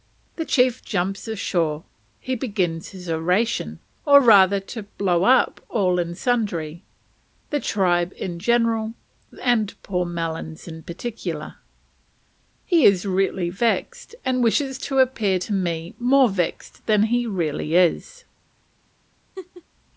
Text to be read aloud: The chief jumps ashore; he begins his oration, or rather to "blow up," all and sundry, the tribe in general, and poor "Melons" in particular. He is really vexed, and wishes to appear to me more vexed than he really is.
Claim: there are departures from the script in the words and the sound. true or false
true